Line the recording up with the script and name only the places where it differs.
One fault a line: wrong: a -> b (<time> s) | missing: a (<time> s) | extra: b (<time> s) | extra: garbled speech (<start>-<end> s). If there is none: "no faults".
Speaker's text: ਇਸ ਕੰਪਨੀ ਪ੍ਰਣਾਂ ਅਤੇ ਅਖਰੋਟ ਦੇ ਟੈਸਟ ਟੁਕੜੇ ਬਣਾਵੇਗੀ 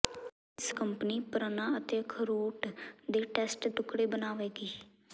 no faults